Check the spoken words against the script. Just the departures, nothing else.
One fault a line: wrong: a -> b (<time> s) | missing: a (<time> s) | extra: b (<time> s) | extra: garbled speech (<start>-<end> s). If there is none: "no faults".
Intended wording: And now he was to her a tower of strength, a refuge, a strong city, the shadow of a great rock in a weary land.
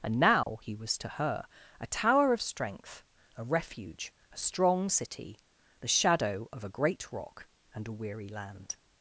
wrong: in -> and (7.7 s)